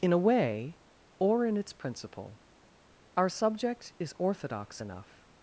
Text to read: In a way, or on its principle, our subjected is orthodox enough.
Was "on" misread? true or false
true